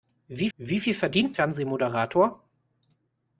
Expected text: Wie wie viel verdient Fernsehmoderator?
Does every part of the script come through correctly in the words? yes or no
yes